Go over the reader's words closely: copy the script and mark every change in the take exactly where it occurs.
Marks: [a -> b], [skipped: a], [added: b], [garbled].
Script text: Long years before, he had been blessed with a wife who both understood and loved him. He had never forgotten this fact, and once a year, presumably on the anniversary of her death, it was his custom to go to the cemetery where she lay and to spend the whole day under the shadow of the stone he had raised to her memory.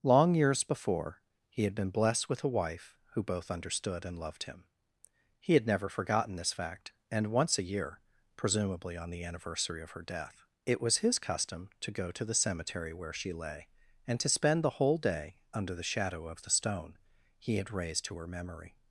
Long years before, he had been blessed with a wife who both understood and loved him. He had never forgotten this fact, and once a year, presumably on the anniversary of her death, it was his custom to go to the cemetery where she lay and to spend the whole day under the shadow of the stone he had raised to her memory.